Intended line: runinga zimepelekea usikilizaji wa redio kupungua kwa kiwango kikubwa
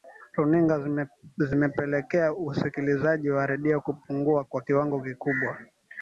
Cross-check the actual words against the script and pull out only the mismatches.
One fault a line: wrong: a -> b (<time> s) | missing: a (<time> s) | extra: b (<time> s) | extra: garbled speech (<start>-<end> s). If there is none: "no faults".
no faults